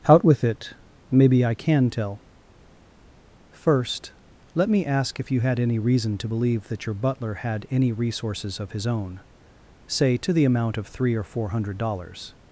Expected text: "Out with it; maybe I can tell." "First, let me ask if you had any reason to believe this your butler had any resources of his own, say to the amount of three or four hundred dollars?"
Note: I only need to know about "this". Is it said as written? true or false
false